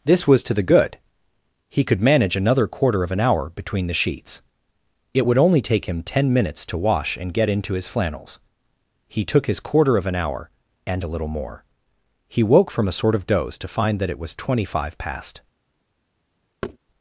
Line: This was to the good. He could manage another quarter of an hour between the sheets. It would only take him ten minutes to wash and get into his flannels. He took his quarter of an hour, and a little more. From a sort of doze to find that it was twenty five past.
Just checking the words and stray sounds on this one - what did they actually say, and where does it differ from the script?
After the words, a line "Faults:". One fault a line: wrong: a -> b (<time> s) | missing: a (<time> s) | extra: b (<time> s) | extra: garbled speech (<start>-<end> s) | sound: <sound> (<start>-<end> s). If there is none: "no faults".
This was to the good. He could manage another quarter of an hour between the sheets. It would only take him ten minutes to wash and get into his flannels. He took his quarter of an hour, and a little more. He woke from a sort of doze to find that it was twenty five past.
Faults:
extra: He woke (12.3 s)
sound: thud (16.6-16.8 s)